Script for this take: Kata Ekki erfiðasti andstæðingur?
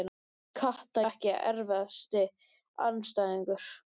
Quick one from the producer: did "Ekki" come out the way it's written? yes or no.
yes